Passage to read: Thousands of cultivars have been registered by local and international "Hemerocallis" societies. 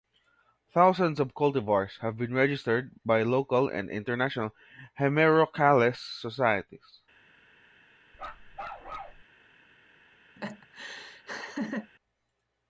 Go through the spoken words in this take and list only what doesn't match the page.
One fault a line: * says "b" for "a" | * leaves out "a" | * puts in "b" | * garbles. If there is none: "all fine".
all fine